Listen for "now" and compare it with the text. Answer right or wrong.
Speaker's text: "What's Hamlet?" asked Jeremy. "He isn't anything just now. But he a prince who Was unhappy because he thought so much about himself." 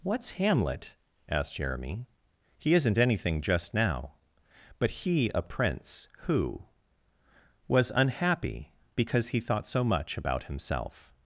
right